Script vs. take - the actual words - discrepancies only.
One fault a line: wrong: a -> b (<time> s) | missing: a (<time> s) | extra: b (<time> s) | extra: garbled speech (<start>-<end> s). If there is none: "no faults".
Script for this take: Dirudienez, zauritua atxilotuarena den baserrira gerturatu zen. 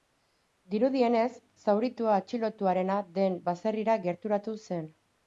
no faults